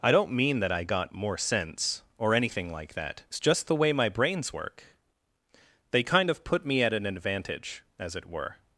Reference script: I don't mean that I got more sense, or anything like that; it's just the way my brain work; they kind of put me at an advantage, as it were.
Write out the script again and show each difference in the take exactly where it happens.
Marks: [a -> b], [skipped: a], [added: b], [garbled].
I don't mean that I got more sense, or anything like that; it's just the way my [brain -> brains] work; they kind of put me at an advantage, as it were.